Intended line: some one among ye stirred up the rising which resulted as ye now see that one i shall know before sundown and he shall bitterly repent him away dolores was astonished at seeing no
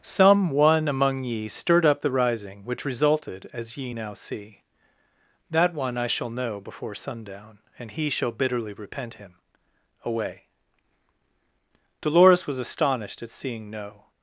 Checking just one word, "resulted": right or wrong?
right